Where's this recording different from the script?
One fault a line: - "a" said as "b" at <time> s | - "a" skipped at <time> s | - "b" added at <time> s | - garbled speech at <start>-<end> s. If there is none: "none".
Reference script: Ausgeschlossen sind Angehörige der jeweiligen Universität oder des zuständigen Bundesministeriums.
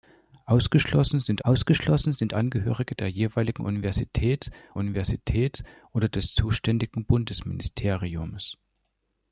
- "ausgeschlossen sind" added at 1.4 s
- "Universität" added at 4.7 s